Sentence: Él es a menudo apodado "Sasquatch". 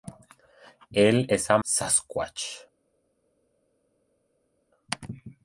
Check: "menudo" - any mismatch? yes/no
yes